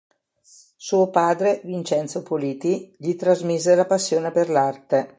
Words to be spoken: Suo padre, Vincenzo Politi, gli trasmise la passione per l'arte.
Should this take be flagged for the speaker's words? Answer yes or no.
no